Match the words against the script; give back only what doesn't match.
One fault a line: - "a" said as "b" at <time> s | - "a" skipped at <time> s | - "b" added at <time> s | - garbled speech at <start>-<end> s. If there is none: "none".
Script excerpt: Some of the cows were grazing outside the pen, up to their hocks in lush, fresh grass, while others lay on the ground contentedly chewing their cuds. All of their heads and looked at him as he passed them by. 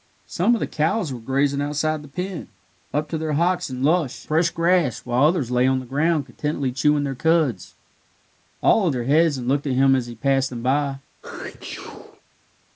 none